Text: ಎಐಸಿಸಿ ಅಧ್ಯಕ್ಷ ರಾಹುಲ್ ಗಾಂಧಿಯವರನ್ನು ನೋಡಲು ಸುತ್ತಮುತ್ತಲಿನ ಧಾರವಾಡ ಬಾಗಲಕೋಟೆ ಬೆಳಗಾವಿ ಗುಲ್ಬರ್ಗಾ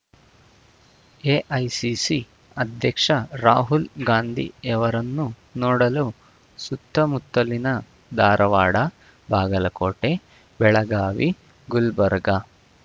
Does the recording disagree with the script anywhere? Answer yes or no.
no